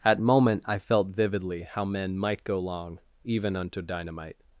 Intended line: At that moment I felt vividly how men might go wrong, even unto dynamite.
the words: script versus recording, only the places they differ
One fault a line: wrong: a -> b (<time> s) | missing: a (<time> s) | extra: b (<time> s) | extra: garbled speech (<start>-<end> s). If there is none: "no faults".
missing: that (0.2 s)
wrong: wrong -> long (2.6 s)